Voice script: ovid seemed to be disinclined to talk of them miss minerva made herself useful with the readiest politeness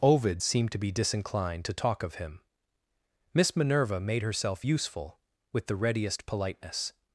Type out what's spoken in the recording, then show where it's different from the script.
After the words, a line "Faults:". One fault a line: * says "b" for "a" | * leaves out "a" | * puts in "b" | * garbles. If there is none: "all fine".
ovid seemed to be disinclined to talk of him miss minerva made herself useful with the readiest politeness
Faults:
* says "him" for "them"